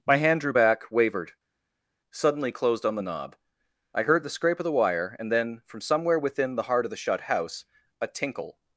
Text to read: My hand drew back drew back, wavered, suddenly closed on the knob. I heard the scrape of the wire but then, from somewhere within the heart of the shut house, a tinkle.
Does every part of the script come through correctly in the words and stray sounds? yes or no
no